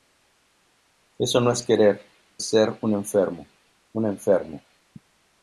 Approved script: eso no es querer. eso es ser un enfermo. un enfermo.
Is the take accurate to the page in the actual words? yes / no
no